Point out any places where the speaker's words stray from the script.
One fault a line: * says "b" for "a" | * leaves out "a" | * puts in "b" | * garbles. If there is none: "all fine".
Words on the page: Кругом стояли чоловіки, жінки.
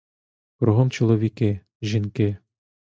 * leaves out "стояли"